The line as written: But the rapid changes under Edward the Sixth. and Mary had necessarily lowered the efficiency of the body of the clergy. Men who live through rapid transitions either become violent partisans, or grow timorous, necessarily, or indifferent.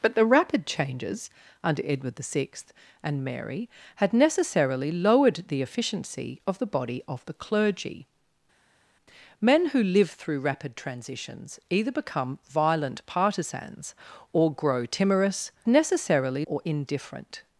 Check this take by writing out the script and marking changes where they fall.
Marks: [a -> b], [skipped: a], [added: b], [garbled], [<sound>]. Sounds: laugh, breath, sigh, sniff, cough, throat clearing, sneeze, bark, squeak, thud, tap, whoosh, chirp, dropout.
But the rapid changes under Edward the Sixth. and Mary had necessarily lowered the efficiency of the body of the clergy. Men who live through rapid transitions either become violent partisans, or grow timorous, necessarily, or indifferent.